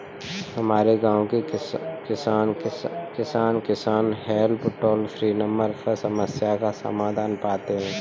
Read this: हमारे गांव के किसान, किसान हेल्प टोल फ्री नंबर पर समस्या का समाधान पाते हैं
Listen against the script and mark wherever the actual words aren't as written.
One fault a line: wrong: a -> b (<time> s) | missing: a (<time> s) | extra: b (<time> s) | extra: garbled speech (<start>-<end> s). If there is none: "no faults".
extra: किसान (3.6 s)